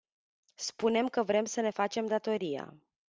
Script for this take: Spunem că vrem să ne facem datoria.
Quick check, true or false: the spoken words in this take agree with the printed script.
true